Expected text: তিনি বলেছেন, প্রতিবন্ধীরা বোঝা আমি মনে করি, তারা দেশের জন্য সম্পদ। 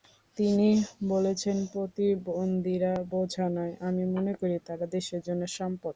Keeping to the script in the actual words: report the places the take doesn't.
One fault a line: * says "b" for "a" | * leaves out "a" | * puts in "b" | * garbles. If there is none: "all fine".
* puts in "নয়"